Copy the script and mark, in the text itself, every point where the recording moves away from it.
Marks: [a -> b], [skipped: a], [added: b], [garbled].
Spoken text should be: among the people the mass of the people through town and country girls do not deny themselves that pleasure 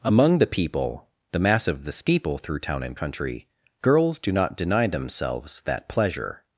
among the people the mass of the [people -> steeple] through town and country girls do not deny themselves that pleasure